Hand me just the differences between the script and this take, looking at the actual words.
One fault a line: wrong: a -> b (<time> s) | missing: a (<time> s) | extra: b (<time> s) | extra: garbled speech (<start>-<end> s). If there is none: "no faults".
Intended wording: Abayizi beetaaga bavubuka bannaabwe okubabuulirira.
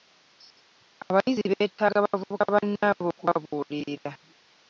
no faults